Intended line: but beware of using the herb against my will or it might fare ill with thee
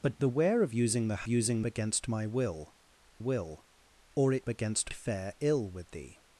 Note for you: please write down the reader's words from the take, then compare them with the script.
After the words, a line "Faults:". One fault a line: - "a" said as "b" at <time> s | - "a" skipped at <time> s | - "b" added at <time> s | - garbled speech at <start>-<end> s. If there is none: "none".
but beware of using the using against my will will or it against fare ill with thee
Faults:
- "herb" said as "using" at 1.3 s
- "will" added at 3.2 s
- "might" said as "against" at 4.5 s